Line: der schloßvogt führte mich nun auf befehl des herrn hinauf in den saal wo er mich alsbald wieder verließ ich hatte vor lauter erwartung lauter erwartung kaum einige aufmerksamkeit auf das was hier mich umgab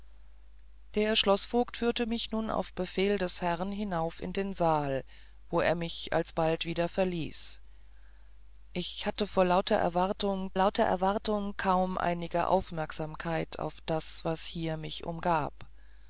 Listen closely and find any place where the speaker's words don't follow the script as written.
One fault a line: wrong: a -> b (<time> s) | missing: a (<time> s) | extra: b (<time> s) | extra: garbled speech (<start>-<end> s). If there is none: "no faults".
no faults